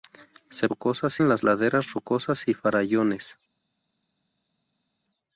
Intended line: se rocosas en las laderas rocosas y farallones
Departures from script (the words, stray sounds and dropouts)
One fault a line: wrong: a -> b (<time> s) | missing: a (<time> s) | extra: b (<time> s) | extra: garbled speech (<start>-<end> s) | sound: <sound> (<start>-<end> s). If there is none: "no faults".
no faults